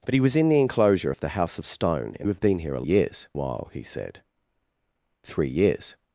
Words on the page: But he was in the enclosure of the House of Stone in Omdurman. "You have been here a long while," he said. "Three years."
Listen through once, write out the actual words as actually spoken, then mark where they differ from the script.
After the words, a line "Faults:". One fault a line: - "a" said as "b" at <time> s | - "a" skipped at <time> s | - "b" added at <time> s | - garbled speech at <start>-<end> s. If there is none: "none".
But he was in the enclosure of the House of Stone in Have been here a years while," he said. "Three years."
Faults:
- "Omdurman You" skipped at 2.3 s
- "long" said as "years" at 2.8 s